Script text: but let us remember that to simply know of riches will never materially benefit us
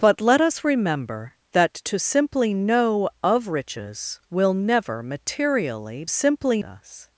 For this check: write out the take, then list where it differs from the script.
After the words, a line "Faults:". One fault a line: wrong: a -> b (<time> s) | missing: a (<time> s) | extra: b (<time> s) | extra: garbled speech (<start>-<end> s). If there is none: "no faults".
but let us remember that to simply know of riches will never materially simply us
Faults:
wrong: benefit -> simply (6.1 s)